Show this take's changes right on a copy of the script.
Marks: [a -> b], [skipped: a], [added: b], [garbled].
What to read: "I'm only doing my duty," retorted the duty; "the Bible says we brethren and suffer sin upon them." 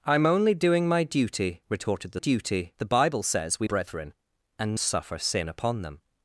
"I'm only doing my duty," retorted the duty; "the Bible says we brethren and suffer sin upon them."